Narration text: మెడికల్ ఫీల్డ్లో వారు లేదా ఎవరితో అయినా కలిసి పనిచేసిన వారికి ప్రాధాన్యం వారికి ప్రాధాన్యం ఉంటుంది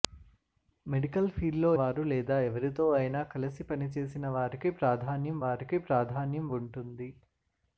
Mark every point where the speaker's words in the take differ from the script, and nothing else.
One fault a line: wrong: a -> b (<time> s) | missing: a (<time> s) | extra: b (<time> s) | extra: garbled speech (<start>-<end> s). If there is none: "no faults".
no faults